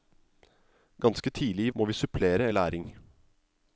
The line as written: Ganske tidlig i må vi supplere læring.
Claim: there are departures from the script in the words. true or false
false